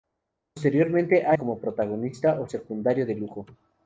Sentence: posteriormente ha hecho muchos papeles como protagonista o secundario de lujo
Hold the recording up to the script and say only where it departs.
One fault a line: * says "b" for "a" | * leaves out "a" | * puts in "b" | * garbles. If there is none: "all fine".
* leaves out "hecho muchos papeles"